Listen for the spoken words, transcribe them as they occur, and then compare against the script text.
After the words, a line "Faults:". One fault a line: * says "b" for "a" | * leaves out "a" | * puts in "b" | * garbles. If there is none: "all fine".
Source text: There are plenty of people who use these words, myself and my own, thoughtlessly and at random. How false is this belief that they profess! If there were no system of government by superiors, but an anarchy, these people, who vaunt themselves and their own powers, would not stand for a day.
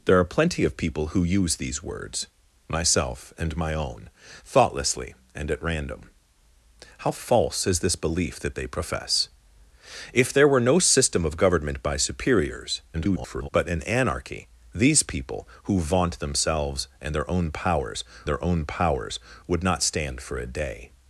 There are plenty of people who use these words, myself and my own, thoughtlessly and at random. How false is this belief that they profess! If there were no system of government by superiors, [garbled] but an anarchy, these people, who vaunt themselves and their own powers their own powers, would not stand for a day.
Faults:
* garbles
* puts in "their own powers"